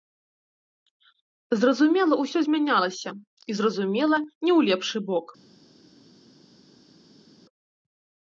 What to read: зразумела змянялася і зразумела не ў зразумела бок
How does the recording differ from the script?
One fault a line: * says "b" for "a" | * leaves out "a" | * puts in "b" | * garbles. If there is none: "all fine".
* puts in "усё"
* says "лепшы" for "зразумела"